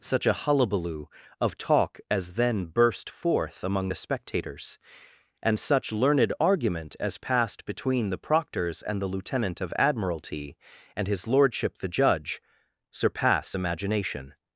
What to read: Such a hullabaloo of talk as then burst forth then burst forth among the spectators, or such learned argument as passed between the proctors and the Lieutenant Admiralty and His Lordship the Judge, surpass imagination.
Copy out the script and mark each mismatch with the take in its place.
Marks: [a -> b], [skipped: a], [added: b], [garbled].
Such a hullabaloo of talk as then burst forth [skipped: then burst forth] among the spectators, [or -> and] such learned argument as passed between the proctors and the Lieutenant [added: of] Admiralty and His Lordship the Judge, surpass imagination.